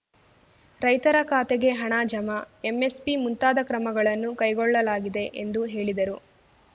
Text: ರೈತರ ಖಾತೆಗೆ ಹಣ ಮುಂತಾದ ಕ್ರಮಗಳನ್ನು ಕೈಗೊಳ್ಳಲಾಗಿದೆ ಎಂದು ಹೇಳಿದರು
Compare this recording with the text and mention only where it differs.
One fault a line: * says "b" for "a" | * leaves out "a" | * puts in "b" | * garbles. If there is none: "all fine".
* puts in "ಜಮಾ ಎಂಎಸ್‌ಪಿ"